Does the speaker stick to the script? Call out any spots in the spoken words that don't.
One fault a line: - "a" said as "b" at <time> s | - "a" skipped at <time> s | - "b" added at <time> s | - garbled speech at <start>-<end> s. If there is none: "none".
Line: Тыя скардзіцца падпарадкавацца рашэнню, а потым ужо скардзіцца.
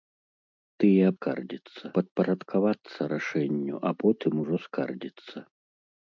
none